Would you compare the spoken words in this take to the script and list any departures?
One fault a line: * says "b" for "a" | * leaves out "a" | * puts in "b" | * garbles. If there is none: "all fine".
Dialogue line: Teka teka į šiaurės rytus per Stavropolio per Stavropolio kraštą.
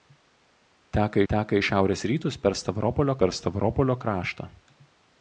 all fine